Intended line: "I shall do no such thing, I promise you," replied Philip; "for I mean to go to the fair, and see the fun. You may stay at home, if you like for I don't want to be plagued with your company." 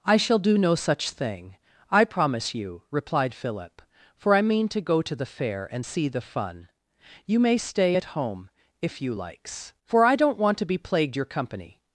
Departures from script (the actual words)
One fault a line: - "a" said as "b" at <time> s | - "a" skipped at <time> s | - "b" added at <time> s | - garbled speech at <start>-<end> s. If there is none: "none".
- "like" said as "likes" at 9.1 s
- "with" skipped at 11.2 s